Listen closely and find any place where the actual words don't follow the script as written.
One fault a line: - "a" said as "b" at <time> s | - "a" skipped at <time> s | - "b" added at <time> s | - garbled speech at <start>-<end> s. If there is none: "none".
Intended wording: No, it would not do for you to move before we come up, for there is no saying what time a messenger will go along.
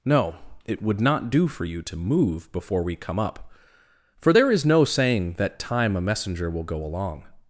- "what" said as "that" at 5.3 s